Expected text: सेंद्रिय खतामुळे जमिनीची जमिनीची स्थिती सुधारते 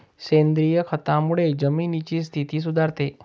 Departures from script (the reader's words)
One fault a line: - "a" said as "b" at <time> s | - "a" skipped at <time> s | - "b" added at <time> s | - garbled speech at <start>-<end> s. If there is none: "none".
- "जमिनीची" skipped at 2.2 s